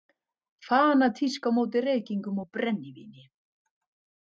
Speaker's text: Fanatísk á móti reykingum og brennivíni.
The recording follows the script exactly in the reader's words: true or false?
true